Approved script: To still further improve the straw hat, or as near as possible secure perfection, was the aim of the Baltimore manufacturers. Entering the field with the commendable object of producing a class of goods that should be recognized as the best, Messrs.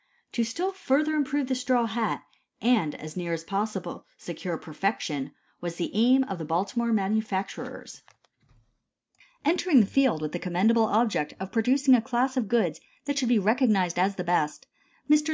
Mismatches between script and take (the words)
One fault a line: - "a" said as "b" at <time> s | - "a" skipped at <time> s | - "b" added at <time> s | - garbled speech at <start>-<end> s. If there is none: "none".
- "or" said as "and" at 2.6 s